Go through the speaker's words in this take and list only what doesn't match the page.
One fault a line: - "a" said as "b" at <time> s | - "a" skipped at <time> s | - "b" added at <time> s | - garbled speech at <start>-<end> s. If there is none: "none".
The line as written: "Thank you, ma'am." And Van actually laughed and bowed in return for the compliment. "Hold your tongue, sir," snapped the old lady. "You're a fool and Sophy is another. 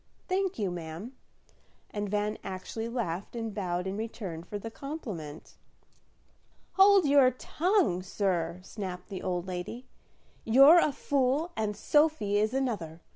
none